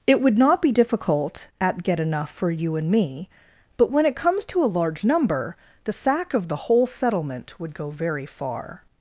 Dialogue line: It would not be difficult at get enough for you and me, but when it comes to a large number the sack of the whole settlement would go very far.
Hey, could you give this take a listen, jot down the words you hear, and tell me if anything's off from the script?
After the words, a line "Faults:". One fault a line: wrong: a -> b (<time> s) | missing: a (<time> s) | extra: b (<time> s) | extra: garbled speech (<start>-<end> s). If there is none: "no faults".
It would not be difficult at get enough for you and me, but when it comes to a large number the sack of the whole settlement would go very far.
Faults:
no faults